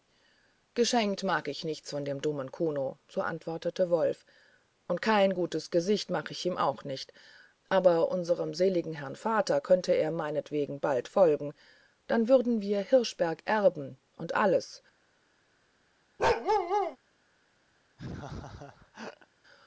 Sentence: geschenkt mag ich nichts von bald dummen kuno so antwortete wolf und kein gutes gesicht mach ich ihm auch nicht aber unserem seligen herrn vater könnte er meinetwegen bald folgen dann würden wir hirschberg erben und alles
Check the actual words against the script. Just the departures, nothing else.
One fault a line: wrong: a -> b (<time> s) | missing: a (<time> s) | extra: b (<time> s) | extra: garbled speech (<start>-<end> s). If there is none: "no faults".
wrong: bald -> dem (2.0 s)